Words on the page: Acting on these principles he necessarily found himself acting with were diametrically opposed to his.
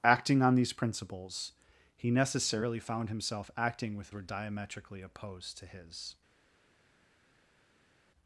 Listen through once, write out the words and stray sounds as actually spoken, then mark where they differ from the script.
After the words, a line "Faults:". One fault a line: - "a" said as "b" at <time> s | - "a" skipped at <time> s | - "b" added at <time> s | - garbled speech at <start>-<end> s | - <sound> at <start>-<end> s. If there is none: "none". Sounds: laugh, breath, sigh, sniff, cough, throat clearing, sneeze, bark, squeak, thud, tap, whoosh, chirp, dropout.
Acting on these principles he necessarily found himself acting with were diametrically opposed to his.
Faults:
none